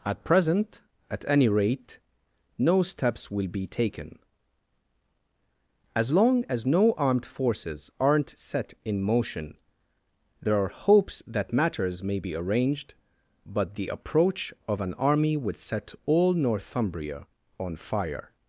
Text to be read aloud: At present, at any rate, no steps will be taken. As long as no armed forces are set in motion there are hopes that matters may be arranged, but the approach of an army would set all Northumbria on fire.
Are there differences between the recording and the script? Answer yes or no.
yes